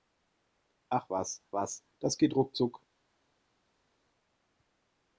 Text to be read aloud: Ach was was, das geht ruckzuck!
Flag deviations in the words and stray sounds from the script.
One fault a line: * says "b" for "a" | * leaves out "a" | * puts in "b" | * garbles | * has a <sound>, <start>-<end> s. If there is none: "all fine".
all fine